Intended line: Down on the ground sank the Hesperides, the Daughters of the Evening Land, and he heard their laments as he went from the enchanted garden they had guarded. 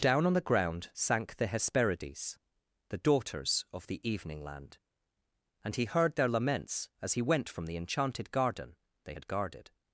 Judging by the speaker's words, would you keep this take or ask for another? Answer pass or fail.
pass